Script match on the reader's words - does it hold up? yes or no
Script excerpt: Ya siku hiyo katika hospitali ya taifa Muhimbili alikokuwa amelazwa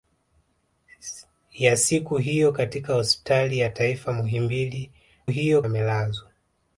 no